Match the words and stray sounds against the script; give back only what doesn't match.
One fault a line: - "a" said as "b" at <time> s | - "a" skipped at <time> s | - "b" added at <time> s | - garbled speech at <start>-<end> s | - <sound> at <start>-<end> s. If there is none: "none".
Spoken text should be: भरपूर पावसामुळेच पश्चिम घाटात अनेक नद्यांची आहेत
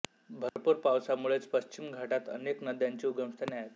- dropout at 0.5-0.6 s
- "उगमस्थाने" added at 3.1 s